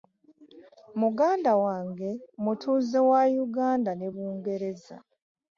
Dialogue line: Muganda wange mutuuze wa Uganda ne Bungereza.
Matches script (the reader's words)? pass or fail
pass